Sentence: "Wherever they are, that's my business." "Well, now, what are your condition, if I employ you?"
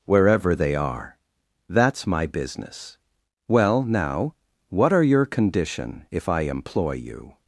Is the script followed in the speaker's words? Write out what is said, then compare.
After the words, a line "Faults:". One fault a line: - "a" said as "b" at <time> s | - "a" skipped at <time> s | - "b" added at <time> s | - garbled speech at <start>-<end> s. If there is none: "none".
"Wherever they are, that's my business." "Well, now, what are your condition, if I employ you?"
Faults:
none